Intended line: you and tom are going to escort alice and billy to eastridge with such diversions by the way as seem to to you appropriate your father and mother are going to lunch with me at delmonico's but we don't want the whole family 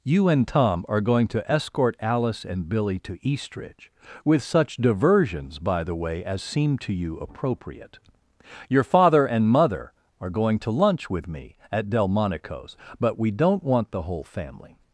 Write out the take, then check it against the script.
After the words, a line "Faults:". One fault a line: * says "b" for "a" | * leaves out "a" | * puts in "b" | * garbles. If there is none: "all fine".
you and tom are going to escort alice and billy to eastridge with such diversions by the way as seem to you appropriate your father and mother are going to lunch with me at delmonico's but we don't want the whole family
Faults:
* leaves out "to"